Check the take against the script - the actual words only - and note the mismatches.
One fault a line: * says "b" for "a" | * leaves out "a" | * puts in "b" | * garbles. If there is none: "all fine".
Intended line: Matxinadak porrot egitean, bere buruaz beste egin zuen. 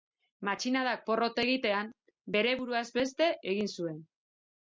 all fine